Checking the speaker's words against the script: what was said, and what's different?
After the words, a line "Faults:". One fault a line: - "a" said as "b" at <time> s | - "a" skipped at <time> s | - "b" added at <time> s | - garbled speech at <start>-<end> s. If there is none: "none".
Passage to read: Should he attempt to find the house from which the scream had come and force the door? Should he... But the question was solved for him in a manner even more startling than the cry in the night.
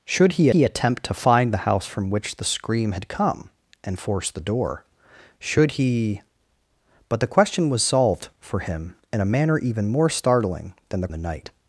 Should he he attempt to find the house from which the scream had come and force the door? Should he... But the question was solved for him in a manner even more startling than the the night.
Faults:
- "he" added at 0.5 s
- "cry in" skipped at 11.1 s